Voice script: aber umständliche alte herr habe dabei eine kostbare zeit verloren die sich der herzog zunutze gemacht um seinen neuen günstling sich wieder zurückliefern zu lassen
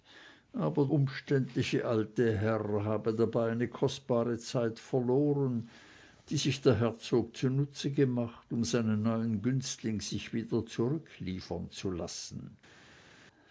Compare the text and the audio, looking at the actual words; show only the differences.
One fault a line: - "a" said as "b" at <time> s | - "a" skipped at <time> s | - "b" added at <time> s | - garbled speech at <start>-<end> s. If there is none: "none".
none